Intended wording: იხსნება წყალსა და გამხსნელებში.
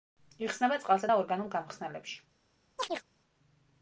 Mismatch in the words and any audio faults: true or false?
true